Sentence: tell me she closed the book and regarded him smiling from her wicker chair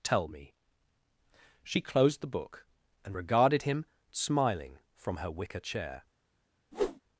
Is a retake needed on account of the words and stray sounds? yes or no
yes